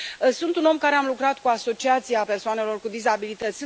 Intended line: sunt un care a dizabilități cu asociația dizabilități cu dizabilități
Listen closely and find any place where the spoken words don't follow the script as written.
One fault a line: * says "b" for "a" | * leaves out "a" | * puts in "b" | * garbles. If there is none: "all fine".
* puts in "om"
* says "lucrat" for "dizabilități"
* says "persoanelor" for "dizabilități"